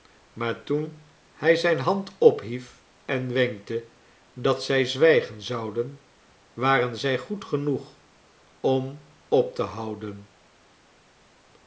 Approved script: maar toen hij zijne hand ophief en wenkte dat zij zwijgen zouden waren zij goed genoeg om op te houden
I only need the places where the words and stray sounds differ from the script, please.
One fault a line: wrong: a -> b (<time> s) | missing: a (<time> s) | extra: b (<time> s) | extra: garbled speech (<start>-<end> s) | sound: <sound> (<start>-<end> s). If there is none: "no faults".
no faults